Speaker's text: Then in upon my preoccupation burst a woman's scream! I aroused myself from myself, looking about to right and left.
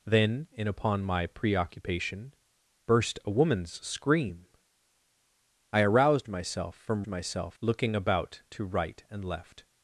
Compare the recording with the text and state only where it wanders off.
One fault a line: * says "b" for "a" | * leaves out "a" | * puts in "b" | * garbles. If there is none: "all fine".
all fine